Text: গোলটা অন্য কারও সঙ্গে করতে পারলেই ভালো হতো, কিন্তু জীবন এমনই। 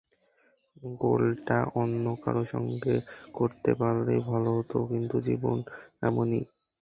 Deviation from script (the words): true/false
false